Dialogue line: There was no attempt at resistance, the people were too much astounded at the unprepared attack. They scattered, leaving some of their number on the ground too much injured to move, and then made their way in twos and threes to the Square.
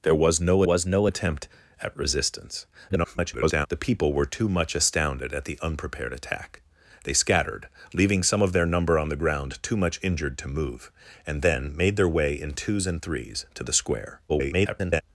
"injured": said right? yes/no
yes